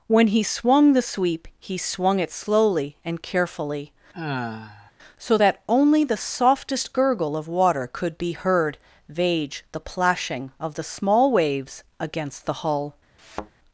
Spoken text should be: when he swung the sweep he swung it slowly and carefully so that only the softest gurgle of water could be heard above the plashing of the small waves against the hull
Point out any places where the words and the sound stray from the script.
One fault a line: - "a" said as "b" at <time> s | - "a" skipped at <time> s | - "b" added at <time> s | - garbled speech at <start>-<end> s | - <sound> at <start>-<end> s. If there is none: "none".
- sigh at 4.1-4.9 s
- "above" said as "vage" at 9.1 s
- thud at 13.2-13.5 s